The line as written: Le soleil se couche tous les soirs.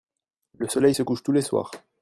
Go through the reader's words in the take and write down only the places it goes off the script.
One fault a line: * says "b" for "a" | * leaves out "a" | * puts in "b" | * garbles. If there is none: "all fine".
all fine